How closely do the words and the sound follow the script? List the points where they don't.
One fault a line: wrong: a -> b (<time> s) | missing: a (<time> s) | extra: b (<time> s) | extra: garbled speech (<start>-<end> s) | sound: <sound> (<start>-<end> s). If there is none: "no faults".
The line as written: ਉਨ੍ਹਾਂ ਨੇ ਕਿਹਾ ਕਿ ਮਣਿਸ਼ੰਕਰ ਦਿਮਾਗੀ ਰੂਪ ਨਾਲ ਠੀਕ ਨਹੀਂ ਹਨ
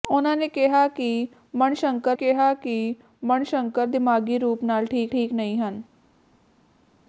extra: ਕਿਹਾ ਕਿ ਮਣਿਸ਼ੰਕਰ (2.1 s)
extra: ਠੀਕ (5.1 s)